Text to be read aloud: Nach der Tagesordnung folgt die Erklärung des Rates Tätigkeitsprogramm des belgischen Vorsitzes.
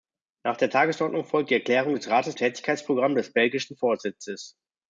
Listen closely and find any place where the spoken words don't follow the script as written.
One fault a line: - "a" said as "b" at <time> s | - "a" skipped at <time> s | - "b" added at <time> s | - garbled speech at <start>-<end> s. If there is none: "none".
none